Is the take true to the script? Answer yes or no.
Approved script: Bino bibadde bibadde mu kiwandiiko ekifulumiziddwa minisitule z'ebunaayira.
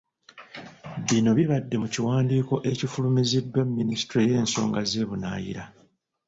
no